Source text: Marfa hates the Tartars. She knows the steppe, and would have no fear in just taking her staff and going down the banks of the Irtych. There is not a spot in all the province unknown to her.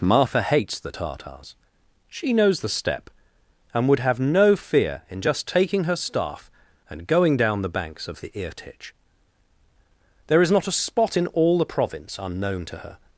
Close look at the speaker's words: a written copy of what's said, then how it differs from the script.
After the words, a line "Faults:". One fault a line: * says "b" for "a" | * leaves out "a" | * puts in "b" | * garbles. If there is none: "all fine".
Marfa hates the Tartars. She knows the steppe, and would have no fear in just taking her staff and going down the banks of the Irtych. There is not a spot in all the province unknown to her.
Faults:
all fine